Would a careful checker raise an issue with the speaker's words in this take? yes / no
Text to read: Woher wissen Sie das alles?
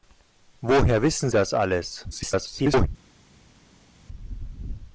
yes